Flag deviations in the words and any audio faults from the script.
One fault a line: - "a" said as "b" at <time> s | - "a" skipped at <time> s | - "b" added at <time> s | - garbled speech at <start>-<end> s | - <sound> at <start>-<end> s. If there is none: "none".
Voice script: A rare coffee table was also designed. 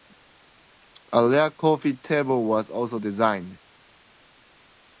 none